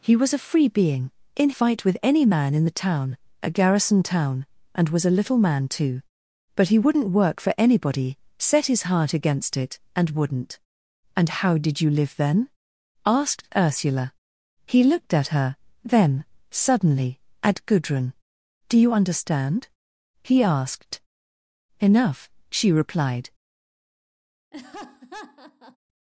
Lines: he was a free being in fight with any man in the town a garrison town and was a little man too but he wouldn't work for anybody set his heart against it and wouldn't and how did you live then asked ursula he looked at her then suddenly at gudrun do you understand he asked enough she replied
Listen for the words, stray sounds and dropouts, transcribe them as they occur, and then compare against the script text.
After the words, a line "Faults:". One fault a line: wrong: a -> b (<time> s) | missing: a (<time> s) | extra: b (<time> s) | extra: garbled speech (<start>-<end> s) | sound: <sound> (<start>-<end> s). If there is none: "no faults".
he was a free being in fight with any man in the town a garrison town and was a little man too but he wouldn't work for anybody set his heart against it and wouldn't and how did you live then asked ursula he looked at her then suddenly at gudrun do you understand he asked enough she replied
Faults:
sound: laugh (24.5-25.8 s)